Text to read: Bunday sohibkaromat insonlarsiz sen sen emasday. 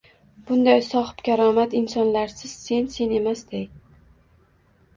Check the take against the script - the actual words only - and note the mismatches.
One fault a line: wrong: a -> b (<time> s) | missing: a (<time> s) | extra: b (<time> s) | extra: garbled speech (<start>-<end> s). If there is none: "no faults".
no faults